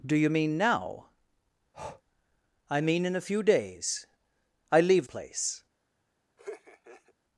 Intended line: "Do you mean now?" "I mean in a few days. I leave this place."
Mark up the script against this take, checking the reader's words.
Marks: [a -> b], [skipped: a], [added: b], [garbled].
"Do you mean now?" "I mean in a few days. I leave [skipped: this] place."